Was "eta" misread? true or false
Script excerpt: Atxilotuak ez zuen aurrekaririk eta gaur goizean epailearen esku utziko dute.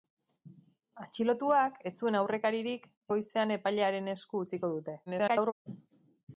true